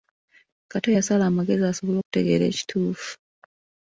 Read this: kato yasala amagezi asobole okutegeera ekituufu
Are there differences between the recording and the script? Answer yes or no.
no